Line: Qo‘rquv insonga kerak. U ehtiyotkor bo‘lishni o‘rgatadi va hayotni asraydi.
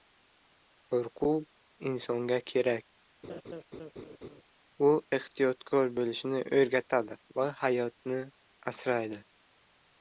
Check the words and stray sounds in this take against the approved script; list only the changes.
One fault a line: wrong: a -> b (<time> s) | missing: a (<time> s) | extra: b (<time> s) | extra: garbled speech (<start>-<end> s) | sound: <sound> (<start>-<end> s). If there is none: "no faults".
sound: laugh (3.2-4.4 s)